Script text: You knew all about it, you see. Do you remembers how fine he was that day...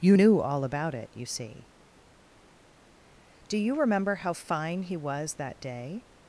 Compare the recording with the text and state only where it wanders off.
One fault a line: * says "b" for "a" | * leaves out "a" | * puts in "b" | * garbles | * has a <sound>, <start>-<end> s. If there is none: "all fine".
* says "remember" for "remembers"